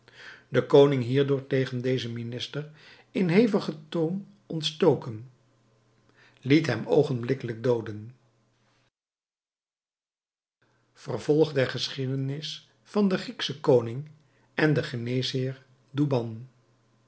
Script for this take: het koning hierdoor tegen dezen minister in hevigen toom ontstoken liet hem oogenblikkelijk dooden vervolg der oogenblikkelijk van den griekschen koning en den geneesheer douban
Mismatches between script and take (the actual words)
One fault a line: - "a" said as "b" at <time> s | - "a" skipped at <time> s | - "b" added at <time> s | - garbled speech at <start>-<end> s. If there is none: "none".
- "het" said as "de" at 0.5 s
- "oogenblikkelijk" said as "geschiedenis" at 11.7 s